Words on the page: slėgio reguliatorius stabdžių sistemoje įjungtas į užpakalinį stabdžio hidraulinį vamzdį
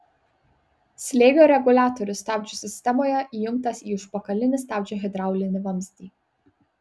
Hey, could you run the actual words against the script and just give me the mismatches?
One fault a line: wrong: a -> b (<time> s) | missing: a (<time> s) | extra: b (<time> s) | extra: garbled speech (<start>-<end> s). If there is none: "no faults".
no faults